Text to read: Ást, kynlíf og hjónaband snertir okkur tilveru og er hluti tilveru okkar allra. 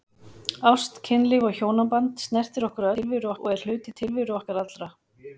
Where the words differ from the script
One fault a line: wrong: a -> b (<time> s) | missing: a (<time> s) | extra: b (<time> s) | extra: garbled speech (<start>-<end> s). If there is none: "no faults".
no faults